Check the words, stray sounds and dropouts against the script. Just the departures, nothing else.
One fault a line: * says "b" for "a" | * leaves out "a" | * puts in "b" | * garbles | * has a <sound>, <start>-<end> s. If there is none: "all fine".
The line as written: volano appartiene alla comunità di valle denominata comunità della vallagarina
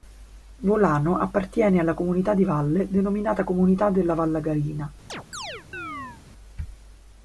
* has a chirp, 5.1-6.2 s